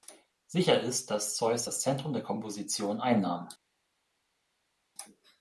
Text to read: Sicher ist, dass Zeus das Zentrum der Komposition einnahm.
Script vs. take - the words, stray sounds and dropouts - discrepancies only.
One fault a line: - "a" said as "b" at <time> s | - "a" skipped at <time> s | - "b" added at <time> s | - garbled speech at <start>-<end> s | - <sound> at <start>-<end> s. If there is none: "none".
none